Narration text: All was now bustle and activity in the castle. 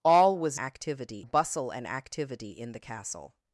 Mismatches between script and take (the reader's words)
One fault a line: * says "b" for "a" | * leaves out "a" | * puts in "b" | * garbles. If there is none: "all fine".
* says "activity" for "now"